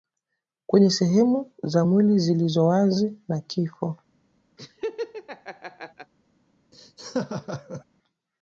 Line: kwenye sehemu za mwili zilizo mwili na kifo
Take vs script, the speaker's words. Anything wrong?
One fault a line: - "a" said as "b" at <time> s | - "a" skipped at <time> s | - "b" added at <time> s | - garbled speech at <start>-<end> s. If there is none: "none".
- "mwili" said as "wazi" at 2.7 s